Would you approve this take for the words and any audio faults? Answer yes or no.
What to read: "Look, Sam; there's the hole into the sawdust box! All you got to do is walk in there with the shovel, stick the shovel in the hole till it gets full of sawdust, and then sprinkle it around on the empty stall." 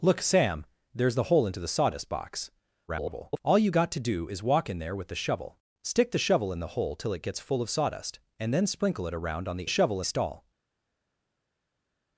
no